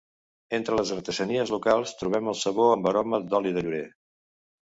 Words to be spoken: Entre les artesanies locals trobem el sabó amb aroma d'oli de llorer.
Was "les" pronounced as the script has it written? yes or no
yes